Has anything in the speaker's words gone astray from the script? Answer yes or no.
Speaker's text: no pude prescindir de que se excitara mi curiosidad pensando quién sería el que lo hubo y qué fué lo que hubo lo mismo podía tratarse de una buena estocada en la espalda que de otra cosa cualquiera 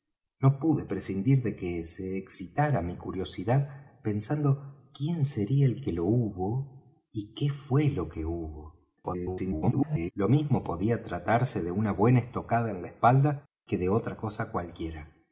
yes